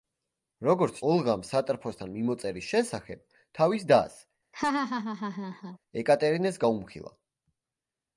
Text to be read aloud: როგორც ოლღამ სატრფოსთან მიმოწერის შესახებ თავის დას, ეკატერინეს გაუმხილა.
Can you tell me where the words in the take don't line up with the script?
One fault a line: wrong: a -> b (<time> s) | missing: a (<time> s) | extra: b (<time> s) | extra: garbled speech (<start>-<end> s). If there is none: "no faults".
no faults